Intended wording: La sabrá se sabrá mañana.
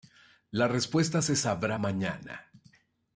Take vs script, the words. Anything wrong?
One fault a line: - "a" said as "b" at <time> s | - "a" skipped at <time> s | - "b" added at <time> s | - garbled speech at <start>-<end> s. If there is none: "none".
- "sabrá" said as "respuesta" at 0.7 s